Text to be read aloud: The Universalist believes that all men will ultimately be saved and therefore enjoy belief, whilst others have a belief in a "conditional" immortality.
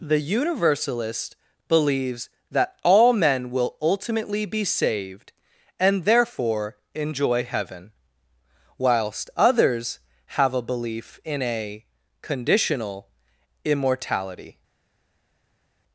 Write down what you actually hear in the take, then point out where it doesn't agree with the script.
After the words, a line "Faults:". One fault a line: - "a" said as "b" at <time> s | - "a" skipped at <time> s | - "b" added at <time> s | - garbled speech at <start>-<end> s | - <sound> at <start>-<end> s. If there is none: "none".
The Universalist believes that all men will ultimately be saved and therefore enjoy heaven, whilst others have a belief in a "conditional" immortality.
Faults:
- "belief" said as "heaven" at 7.4 s